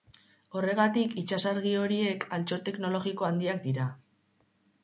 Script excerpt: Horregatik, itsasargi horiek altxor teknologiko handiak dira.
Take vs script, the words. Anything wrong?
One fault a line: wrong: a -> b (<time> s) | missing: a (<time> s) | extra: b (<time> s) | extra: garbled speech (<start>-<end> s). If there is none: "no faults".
no faults